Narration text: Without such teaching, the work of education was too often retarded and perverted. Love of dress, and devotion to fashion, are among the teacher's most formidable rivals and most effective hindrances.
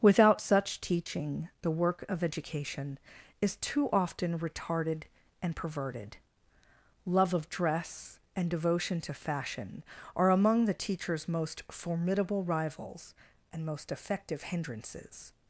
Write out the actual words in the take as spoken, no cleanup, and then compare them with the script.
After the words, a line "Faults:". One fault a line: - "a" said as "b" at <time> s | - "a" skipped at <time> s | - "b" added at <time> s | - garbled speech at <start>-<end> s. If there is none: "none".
Without such teaching, the work of education is too often retarded and perverted. Love of dress, and devotion to fashion, are among the teacher's most formidable rivals and most effective hindrances.
Faults:
- "was" said as "is" at 3.4 s